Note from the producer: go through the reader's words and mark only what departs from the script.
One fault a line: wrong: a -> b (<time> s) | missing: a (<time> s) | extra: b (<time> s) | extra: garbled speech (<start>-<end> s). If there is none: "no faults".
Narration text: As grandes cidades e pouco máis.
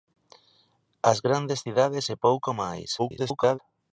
extra: garbled speech (3.0-3.6 s)